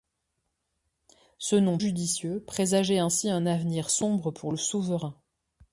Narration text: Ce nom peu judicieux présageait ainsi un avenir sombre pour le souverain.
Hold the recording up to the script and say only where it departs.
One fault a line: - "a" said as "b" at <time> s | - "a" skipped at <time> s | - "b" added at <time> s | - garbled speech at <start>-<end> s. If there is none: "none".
- "peu" skipped at 1.8 s